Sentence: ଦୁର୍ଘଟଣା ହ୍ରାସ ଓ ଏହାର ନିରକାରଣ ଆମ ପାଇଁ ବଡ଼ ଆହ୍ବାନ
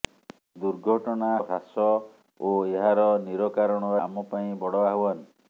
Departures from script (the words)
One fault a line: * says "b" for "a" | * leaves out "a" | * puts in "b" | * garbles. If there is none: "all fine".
all fine